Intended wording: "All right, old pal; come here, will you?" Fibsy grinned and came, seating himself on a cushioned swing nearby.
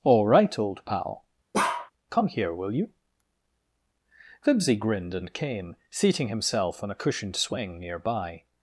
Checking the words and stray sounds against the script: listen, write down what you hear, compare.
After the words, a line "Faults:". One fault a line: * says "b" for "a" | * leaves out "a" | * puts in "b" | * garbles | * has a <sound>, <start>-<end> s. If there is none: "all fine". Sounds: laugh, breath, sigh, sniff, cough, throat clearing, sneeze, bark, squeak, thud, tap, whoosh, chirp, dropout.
"All right, old pal; come here, will you?" Fibsy grinned and came, seating himself on a cushioned swing nearby.
Faults:
* has a bark, 1.5-1.9 s